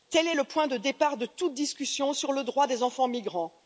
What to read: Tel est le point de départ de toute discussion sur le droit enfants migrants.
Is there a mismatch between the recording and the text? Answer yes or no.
yes